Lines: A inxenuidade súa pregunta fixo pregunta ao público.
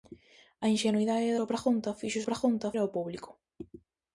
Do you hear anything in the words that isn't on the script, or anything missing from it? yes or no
no